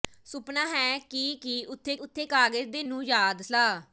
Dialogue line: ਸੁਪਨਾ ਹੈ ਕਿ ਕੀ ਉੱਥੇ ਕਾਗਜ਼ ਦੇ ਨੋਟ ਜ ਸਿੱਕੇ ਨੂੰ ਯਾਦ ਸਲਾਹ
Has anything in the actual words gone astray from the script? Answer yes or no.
yes